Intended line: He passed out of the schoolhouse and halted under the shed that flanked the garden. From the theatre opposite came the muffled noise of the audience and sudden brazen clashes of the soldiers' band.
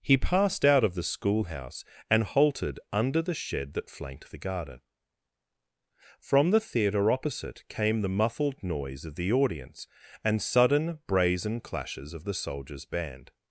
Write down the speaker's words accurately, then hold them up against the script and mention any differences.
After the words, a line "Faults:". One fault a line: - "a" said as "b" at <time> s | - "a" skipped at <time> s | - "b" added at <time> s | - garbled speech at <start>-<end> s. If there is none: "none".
He passed out of the schoolhouse and halted under the shed that flanked the garden. From the theatre opposite came the muffled noise of the audience and sudden brazen clashes of the soldiers' band.
Faults:
none